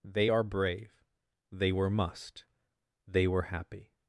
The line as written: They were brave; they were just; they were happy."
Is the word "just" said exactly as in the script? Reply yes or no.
no